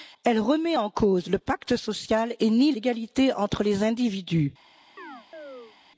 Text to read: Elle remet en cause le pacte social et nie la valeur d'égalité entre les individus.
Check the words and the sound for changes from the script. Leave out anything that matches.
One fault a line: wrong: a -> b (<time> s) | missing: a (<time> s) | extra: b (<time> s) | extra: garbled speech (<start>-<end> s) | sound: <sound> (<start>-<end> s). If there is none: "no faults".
missing: la valeur (2.7 s)
sound: chirp (5.0-5.8 s)